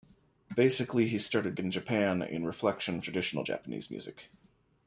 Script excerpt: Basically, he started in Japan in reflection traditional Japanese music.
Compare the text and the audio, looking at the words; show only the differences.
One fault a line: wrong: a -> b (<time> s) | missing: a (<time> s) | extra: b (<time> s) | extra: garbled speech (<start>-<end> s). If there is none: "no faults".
no faults